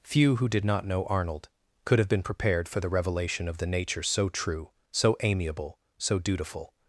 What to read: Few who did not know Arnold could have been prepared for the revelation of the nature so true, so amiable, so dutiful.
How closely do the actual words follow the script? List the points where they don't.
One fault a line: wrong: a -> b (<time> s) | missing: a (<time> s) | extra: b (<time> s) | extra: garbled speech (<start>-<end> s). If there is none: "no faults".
no faults